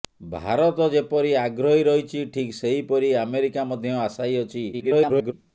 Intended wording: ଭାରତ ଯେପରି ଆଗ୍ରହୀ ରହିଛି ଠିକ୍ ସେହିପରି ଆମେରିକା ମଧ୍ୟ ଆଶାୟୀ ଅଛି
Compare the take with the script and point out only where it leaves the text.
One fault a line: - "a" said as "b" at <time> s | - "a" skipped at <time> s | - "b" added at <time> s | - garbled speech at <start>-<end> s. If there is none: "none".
- garbled speech at 4.7-5.3 s